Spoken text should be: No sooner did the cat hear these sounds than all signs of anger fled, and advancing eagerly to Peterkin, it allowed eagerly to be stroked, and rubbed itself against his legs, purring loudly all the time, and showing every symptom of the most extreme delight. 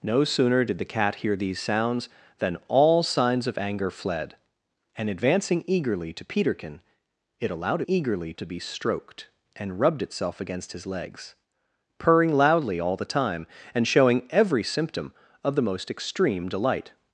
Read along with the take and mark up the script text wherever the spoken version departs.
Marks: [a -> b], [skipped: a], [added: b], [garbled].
No sooner did the cat hear these sounds than all signs of anger fled, and advancing eagerly to Peterkin, it allowed eagerly to be stroked, and rubbed itself against his legs, purring loudly all the time, and showing every symptom of the most extreme delight.